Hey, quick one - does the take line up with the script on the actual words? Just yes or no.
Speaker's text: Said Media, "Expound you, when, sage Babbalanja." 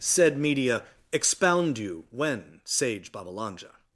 yes